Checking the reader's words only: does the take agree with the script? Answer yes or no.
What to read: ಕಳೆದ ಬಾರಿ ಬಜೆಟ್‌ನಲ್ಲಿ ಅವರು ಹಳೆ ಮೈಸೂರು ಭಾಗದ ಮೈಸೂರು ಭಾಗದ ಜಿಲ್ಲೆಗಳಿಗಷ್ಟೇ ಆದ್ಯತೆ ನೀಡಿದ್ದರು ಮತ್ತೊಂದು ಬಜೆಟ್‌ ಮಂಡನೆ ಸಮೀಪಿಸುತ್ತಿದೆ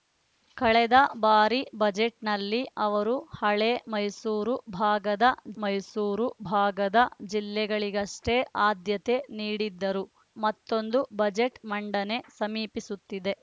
yes